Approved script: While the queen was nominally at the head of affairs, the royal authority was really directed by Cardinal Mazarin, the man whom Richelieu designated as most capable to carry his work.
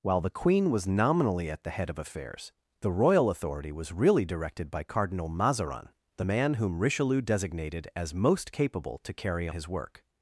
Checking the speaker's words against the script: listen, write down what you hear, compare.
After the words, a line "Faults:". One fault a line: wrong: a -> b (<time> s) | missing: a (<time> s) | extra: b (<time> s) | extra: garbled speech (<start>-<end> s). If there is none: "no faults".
While the queen was nominally at the head of affairs, the royal authority was really directed by Cardinal Mazarin, the man whom Richelieu designated as most capable to carry his work.
Faults:
no faults